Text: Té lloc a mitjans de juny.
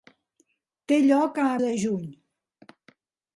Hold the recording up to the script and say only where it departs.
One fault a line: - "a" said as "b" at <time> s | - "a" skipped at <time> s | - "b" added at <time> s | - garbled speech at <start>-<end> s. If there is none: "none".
- "mitjans" skipped at 1.5 s